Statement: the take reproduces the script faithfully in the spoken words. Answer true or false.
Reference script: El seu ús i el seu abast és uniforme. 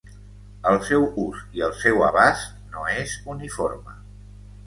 false